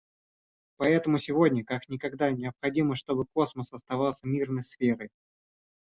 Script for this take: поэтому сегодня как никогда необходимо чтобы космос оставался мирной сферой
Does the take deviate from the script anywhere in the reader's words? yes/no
no